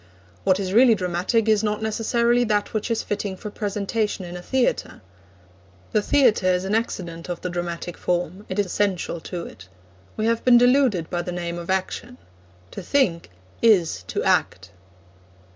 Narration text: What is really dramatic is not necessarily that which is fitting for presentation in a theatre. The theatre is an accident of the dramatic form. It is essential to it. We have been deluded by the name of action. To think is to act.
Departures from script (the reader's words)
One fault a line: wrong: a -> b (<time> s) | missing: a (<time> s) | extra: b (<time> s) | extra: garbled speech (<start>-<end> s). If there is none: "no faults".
no faults